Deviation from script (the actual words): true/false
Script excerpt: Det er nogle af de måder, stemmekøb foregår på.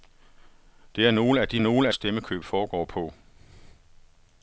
true